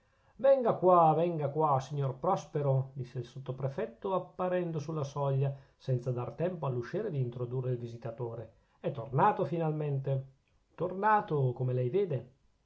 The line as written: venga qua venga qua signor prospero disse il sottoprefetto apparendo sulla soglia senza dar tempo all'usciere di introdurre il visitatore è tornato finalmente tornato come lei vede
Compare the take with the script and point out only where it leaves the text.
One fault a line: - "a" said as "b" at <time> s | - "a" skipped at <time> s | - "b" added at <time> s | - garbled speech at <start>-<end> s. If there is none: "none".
none